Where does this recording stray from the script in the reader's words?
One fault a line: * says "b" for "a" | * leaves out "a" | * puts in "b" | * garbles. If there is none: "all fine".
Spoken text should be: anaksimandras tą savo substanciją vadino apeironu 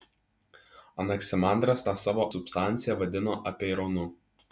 all fine